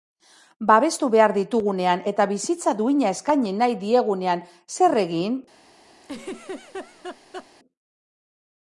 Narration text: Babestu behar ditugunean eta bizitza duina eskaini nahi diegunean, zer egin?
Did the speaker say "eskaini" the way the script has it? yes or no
yes